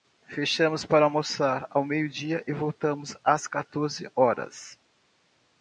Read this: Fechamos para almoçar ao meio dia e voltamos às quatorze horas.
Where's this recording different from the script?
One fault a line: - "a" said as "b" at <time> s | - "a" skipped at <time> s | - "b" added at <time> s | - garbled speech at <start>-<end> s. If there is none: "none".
none